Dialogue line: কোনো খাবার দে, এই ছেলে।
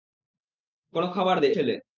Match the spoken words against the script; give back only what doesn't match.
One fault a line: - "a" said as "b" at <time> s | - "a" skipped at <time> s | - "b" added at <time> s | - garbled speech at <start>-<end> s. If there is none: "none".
- "এই" skipped at 1.5 s